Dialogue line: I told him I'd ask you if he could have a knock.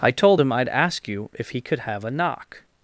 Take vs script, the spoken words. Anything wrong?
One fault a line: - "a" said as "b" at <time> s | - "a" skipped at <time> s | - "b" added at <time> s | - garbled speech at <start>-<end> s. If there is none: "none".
none